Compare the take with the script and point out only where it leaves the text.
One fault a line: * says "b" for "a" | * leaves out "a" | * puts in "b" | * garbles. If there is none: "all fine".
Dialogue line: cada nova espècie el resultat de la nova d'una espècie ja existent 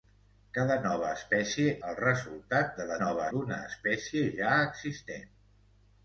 all fine